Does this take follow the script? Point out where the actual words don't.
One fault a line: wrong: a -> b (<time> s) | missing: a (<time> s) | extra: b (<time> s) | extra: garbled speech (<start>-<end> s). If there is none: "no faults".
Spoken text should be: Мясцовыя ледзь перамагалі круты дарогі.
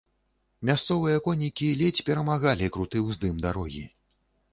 extra: конікі (1.2 s)
extra: ўздым (3.1 s)